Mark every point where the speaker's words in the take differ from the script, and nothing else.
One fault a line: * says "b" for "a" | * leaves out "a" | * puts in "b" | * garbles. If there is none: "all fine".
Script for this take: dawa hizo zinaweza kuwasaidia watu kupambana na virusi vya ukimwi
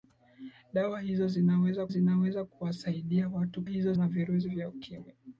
* puts in "zinaweza"
* says "hizo" for "kupambana"